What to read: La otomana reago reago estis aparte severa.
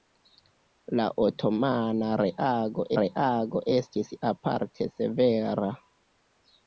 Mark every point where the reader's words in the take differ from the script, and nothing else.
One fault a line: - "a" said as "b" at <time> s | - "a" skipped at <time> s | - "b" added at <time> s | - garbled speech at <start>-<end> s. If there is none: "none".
none